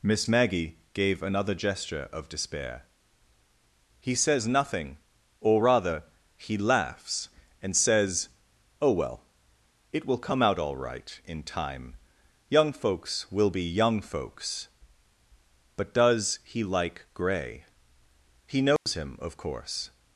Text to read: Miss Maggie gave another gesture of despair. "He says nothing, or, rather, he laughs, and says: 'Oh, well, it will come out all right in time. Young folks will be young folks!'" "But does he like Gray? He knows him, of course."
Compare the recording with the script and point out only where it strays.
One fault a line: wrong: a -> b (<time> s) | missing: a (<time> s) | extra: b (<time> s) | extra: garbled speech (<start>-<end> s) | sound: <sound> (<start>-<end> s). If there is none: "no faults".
sound: dropout (18.8-18.9 s)